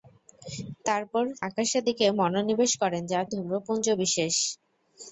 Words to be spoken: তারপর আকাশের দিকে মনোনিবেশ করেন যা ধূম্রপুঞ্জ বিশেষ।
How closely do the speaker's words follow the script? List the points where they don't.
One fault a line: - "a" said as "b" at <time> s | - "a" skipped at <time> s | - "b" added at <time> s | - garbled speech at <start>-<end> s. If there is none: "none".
none